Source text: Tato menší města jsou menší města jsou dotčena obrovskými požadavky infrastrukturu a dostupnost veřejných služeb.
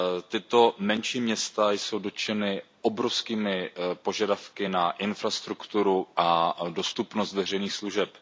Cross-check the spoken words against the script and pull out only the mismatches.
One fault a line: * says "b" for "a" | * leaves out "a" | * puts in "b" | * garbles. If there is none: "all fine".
* leaves out "menší města jsou"
* puts in "na"